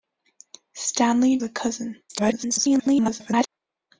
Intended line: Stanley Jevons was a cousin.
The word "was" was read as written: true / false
false